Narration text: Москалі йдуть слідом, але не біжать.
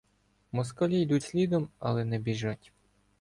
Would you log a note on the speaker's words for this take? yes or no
no